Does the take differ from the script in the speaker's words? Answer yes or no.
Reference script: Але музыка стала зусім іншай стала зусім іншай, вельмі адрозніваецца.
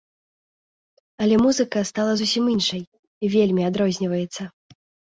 yes